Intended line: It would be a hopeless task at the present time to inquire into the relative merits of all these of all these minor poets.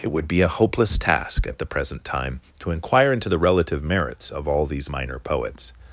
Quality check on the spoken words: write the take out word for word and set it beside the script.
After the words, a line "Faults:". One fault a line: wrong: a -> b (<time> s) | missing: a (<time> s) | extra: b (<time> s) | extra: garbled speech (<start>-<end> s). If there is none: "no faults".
It would be a hopeless task at the present time to inquire into the relative merits of all these minor poets.
Faults:
missing: of all these (4.9 s)